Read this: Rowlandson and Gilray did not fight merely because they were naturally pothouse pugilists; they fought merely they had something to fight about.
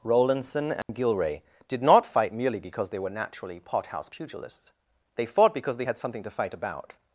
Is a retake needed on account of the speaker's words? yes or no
yes